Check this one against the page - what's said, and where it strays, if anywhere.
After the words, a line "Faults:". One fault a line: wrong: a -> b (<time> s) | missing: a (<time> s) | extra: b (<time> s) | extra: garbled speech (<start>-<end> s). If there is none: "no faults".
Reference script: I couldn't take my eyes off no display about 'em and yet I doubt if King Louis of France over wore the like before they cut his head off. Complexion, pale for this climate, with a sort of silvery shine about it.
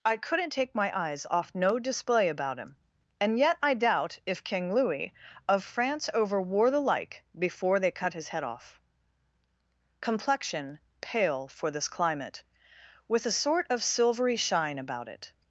I couldn't take my eyes off no display about 'him and yet I doubt if King Louis of France over wore the like before they cut his head off. Complexion, pale for this climate, with a sort of silvery shine about it.
Faults:
wrong: em -> him (2.6 s)